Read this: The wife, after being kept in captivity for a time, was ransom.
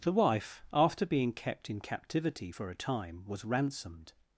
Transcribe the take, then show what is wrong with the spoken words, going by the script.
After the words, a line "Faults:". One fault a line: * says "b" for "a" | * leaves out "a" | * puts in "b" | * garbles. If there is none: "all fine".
The wife, after being kept in captivity for a time, was ransomed.
Faults:
* says "ransomed" for "ransom"